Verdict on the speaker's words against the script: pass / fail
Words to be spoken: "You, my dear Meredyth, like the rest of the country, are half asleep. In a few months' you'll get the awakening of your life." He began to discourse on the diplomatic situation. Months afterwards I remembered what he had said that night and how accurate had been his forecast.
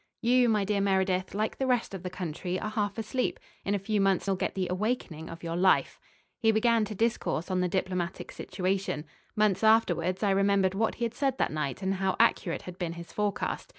pass